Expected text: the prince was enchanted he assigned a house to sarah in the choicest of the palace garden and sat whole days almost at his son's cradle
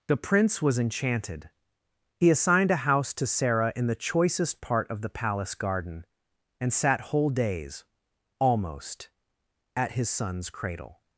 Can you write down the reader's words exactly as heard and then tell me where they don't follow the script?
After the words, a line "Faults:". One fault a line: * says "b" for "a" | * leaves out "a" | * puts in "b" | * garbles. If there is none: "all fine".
the prince was enchanted he assigned a house to sarah in the choicest part of the palace garden and sat whole days almost at his son's cradle
Faults:
* puts in "part"